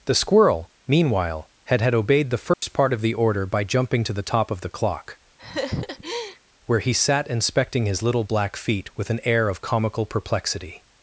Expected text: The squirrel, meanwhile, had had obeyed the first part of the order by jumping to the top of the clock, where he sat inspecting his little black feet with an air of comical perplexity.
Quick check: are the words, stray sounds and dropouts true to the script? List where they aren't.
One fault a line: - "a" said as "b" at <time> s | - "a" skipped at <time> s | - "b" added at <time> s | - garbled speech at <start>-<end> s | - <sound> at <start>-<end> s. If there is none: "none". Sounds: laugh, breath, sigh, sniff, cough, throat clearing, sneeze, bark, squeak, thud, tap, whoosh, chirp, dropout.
- dropout at 2.5-2.6 s
- laugh at 5.4-6.4 s